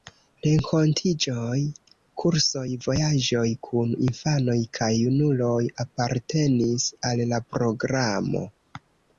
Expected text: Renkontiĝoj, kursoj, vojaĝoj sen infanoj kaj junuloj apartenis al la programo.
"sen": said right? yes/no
no